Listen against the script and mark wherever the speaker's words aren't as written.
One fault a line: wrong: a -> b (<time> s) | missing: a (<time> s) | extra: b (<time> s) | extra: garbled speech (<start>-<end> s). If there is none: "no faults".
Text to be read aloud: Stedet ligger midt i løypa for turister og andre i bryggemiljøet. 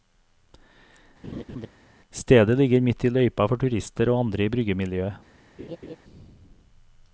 no faults